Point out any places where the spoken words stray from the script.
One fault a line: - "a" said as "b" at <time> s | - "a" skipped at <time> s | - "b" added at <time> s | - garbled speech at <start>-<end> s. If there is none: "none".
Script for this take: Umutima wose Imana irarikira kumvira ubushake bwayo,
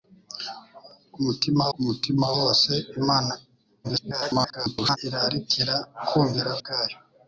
- "umutima" added at 1.8 s
- garbled speech at 3.8-5.0 s
- "ubushake" skipped at 6.5 s